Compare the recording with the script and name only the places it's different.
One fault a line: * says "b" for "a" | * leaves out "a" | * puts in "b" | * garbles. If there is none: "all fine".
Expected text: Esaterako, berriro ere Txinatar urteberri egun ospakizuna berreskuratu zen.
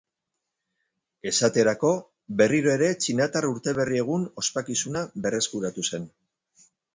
all fine